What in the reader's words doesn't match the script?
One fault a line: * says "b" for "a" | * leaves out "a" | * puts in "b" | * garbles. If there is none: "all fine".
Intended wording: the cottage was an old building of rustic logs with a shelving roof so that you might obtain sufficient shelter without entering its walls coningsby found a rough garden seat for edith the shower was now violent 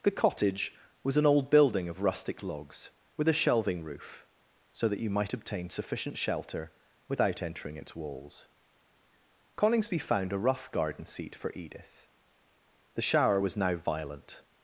all fine